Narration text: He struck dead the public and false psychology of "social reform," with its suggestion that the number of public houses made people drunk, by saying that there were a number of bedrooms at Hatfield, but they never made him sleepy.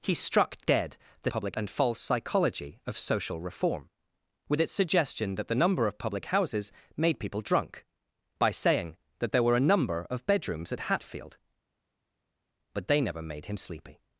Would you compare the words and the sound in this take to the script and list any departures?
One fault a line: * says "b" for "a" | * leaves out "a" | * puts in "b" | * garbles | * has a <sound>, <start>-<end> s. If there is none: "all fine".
all fine